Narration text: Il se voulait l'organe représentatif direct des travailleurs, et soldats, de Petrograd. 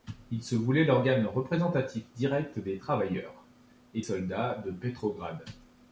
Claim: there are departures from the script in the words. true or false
false